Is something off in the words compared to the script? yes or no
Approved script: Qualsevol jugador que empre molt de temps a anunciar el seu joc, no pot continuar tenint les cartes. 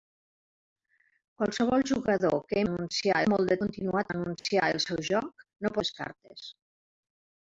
yes